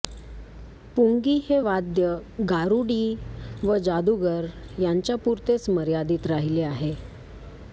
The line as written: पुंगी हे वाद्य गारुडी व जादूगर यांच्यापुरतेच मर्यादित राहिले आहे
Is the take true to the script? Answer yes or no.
yes